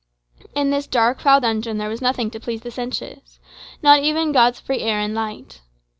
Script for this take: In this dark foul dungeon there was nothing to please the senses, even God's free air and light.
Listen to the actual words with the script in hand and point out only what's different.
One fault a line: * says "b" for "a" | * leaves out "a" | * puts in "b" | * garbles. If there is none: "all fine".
* puts in "not"